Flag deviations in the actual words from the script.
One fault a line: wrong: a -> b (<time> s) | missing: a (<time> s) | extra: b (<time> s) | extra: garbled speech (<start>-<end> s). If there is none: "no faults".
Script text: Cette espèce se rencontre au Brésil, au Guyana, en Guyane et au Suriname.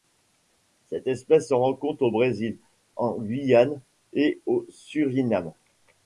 missing: au Guyana (2.6 s)